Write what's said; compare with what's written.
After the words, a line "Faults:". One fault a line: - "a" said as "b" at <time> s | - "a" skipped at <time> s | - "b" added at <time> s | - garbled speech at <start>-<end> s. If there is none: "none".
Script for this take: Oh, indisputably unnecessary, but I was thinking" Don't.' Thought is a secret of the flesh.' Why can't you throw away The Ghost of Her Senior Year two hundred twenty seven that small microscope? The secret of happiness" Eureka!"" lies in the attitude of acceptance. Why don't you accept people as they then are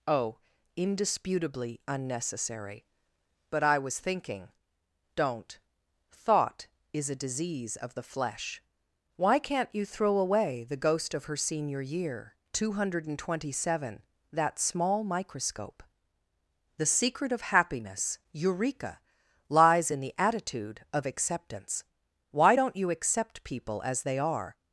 Oh, indisputably unnecessary, but I was thinking" Don't.' Thought is a disease of the flesh.' Why can't you throw away The Ghost of Her Senior Year two hundred twenty seven that small microscope? The secret of happiness" Eureka!"" lies in the attitude of acceptance. Why don't you accept people as they are
Faults:
- "secret" said as "disease" at 7.2 s
- "then" skipped at 24.2 s